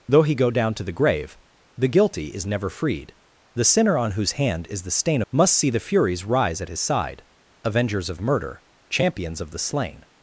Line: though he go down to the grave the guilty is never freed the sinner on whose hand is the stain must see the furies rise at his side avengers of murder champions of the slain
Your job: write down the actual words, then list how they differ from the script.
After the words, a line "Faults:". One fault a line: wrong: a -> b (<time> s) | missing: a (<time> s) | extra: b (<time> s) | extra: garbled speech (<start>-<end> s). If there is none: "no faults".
though he go down to the grave the guilty is never freed the sinner on whose hand is the stain must see the furies rise at his side avengers of murder champions of the slain
Faults:
no faults